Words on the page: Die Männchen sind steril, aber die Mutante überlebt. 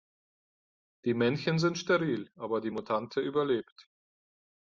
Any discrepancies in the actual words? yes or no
no